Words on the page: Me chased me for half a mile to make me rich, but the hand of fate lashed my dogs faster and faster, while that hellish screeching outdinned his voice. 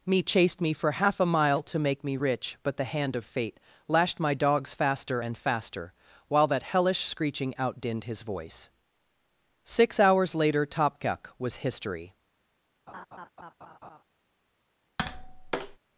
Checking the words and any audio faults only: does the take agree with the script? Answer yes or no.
no